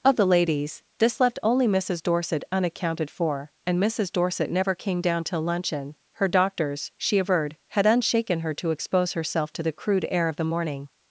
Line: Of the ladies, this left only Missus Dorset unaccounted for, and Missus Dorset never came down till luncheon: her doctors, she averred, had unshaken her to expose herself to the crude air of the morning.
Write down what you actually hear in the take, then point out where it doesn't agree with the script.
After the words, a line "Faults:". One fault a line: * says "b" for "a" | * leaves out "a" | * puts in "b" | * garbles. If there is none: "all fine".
Of the ladies, this left only Missus Dorset unaccounted for, and Missus Dorset never came down till luncheon: her doctors, she averred, had unshaken her to expose herself to the crude air of the morning.
Faults:
all fine